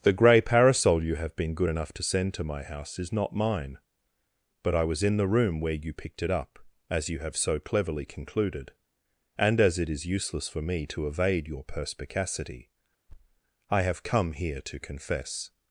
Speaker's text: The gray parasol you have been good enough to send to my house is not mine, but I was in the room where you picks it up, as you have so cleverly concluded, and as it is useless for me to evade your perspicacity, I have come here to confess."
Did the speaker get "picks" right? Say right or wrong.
wrong